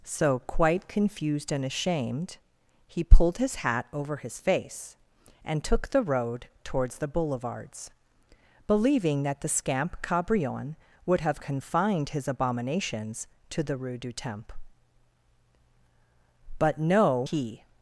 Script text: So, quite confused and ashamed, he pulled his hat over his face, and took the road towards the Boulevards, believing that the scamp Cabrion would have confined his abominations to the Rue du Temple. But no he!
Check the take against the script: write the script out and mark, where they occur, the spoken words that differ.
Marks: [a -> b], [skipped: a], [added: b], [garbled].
So, quite confused and ashamed, he pulled his hat over his face, and took the road towards the Boulevards, believing that the scamp Cabrion would have confined his abominations to the Rue du Temple. But no he!